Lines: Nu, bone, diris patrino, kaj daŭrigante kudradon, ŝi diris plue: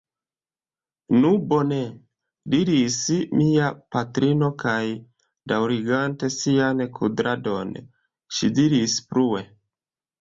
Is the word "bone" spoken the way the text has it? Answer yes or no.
yes